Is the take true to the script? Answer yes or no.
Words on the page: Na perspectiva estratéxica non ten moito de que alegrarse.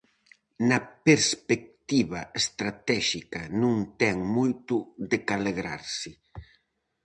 yes